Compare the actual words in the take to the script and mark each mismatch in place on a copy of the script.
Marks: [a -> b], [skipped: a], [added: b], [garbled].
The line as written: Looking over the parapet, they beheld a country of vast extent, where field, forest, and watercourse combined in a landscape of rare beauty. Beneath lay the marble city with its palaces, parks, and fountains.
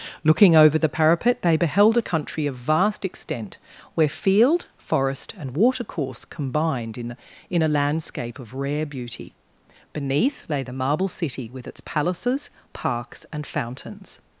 Looking over the parapet, they beheld a country of vast extent, where field, forest, and watercourse combined in [added: in] a landscape of rare beauty. Beneath lay the marble city with its palaces, parks, and fountains.